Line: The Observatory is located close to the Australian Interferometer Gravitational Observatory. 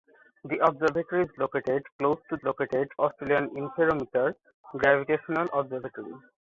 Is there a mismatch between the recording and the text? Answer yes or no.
yes